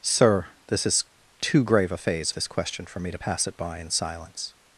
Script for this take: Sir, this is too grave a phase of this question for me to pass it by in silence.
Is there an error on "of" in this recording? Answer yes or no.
yes